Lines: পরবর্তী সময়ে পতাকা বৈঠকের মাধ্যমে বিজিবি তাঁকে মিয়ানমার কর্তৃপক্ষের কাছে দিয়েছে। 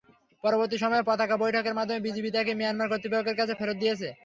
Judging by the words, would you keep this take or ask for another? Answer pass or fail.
fail